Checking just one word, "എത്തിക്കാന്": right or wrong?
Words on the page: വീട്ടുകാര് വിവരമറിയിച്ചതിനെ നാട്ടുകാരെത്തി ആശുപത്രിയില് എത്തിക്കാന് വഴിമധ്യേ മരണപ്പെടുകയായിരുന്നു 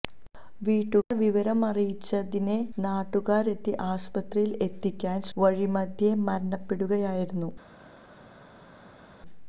right